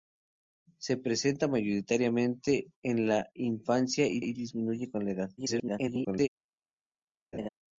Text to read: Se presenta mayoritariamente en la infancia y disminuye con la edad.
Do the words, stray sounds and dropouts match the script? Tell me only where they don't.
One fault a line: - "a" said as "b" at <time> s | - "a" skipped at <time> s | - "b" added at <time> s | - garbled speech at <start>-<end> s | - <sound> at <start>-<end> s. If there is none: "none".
- "y" added at 4.2 s
- garbled speech at 5.4-6.3 s
- laugh at 7.3-7.5 s